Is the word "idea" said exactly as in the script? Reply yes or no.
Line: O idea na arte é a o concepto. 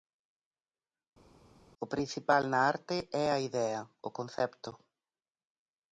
no